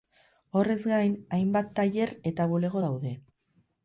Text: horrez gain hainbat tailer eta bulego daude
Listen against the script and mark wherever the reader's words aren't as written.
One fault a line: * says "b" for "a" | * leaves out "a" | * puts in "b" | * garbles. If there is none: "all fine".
all fine